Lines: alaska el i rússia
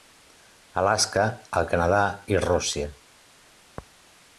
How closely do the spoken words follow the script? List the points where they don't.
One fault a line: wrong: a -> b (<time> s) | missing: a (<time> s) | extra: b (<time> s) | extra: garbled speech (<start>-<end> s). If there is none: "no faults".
extra: canadà (1.8 s)